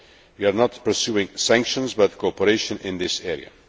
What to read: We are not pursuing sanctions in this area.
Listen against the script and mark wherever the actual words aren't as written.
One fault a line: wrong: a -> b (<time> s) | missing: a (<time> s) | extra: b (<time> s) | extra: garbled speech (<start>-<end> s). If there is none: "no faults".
extra: but cooperation (1.9 s)